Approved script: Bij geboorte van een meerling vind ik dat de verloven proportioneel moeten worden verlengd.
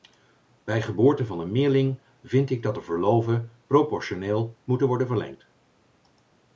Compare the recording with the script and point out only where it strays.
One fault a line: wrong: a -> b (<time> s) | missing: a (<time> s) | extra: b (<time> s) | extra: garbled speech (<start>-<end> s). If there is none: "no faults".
no faults